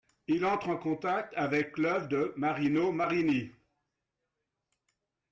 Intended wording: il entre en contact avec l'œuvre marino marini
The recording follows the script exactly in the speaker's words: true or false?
false